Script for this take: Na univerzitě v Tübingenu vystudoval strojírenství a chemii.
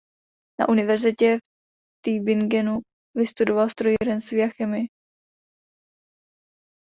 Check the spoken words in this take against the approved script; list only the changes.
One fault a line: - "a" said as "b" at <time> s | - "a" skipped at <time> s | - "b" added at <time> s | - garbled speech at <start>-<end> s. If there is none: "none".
none